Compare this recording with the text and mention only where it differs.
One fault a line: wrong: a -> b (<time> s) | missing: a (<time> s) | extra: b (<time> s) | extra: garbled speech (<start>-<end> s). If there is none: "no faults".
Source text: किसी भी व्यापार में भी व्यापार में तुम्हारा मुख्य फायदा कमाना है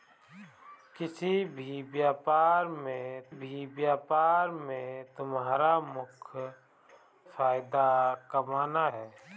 no faults